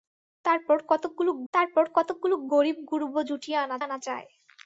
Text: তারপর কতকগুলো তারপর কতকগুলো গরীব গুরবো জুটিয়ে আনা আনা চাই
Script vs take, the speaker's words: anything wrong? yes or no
no